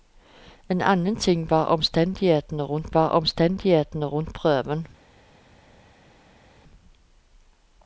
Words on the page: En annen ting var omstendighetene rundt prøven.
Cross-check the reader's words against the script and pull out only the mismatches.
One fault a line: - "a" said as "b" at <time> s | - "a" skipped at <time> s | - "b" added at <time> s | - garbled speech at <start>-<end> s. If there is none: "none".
- "var omstendighetene rundt" added at 2.9 s